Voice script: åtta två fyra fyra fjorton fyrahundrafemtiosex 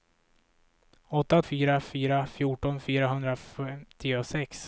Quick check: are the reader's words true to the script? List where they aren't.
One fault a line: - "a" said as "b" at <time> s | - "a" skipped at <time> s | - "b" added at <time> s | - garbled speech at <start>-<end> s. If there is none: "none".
- "två" skipped at 1.4 s